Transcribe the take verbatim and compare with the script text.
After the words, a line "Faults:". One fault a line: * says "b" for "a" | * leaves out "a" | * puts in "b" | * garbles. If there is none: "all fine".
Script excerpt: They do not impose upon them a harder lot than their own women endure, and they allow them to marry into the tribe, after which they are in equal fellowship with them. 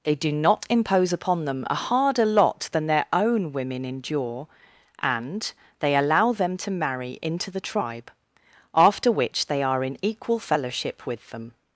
They do not impose upon them a harder lot than their own women endure, and they allow them to marry into the tribe, after which they are in equal fellowship with them.
Faults:
all fine